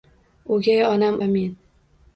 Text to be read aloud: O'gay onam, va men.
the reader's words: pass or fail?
pass